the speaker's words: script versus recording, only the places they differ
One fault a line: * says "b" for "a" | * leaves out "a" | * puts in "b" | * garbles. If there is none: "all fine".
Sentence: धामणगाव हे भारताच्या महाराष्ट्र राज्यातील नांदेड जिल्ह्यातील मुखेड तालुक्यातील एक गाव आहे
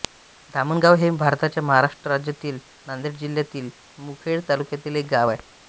all fine